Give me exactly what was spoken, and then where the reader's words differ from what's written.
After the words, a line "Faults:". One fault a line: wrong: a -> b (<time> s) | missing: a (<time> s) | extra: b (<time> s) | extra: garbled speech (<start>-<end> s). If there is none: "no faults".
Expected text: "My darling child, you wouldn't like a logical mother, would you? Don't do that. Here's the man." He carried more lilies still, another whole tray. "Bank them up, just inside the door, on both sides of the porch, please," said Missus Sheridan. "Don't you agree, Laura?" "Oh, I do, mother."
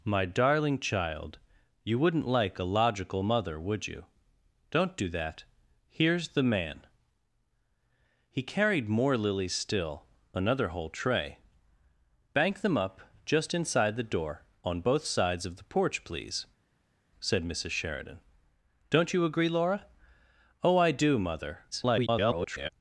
"My darling child, you wouldn't like a logical mother, would you? Don't do that. Here's the man." He carried more lilies still, another whole tray. "Bank them up, just inside the door, on both sides of the porch, please," said Missus Sheridan. "Don't you agree, Laura?" "Oh, I do, mother." [garbled]
Faults:
extra: garbled speech (21.7-22.7 s)